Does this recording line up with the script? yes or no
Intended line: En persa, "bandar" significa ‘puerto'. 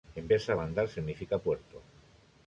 yes